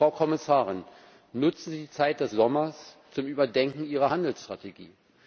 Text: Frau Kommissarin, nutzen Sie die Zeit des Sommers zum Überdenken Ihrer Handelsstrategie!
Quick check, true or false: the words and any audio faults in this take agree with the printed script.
true